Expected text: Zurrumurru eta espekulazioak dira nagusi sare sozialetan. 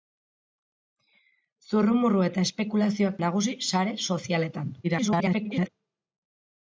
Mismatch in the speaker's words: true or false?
true